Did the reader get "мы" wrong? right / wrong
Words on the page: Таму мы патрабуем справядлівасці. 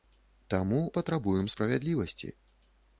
wrong